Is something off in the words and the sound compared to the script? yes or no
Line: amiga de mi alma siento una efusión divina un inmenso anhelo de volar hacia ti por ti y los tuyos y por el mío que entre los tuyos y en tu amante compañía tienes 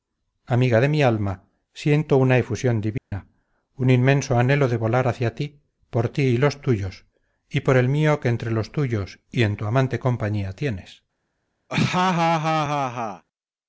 yes